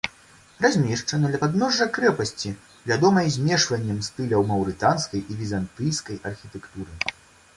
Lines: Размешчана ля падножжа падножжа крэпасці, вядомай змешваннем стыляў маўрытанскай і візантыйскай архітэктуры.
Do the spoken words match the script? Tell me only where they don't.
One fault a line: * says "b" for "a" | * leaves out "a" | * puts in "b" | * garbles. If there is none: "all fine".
* leaves out "падножжа"